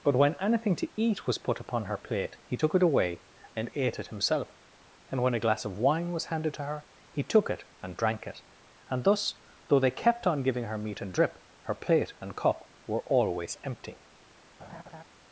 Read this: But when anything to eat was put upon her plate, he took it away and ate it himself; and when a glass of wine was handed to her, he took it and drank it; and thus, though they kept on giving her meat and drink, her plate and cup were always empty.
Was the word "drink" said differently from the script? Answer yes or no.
yes